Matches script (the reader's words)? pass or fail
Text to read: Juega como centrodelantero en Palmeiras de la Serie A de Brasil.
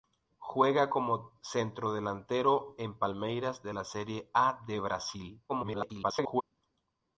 fail